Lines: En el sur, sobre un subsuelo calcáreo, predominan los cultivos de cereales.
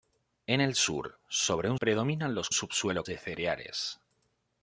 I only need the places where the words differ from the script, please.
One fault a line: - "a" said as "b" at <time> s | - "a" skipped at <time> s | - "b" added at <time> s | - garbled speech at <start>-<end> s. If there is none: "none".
- "subsuelo calcáreo" skipped at 1.8 s
- "cultivos" said as "subsuelo" at 2.5 s